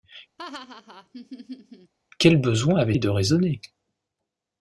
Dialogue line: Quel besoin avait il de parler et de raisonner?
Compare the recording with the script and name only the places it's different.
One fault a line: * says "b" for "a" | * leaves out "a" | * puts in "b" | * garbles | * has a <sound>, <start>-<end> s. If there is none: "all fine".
* has a laugh, 0.4-1.9 s
* leaves out "il de parler"